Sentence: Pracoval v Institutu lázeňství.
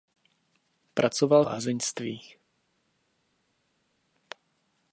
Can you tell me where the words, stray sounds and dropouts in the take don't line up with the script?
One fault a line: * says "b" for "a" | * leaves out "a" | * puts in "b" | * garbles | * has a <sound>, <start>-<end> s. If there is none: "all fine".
* leaves out "v Institutu"